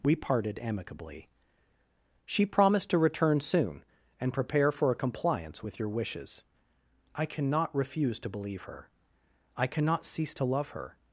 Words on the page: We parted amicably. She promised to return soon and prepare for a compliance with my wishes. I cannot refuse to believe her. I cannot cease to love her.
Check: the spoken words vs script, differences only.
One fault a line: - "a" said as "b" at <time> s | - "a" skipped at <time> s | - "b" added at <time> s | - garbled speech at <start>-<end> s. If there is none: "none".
- "my" said as "your" at 5.8 s